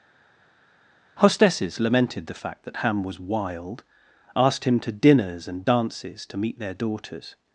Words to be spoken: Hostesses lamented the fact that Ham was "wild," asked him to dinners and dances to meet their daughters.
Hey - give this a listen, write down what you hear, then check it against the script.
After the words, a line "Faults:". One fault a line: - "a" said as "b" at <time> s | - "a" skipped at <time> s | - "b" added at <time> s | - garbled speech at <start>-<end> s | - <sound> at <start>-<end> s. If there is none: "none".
Hostesses lamented the fact that Ham was "wild," asked him to dinners and dances to meet their daughters.
Faults:
none